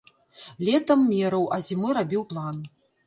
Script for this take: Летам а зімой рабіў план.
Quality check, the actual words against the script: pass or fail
fail